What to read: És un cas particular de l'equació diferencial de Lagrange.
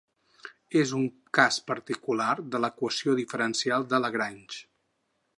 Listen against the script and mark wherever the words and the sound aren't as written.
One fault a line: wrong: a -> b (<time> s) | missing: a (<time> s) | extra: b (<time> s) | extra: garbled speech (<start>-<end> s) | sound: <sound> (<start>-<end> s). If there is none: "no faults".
no faults